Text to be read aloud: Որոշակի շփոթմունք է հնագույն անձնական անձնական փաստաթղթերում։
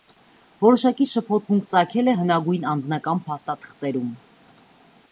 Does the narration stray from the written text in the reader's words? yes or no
yes